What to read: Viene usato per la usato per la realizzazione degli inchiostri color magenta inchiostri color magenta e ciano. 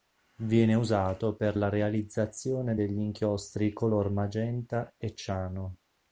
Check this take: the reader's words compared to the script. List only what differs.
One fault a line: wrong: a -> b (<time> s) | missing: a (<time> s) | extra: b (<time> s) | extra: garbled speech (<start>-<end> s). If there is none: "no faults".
missing: usato per la (1.7 s)
missing: inchiostri color magenta (4.9 s)